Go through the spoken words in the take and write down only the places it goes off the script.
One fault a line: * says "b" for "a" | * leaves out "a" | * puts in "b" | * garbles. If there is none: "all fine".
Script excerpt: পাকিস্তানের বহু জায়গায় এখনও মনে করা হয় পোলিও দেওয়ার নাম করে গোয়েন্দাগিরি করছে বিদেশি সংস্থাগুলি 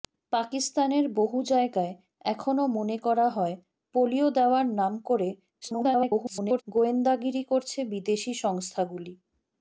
* garbles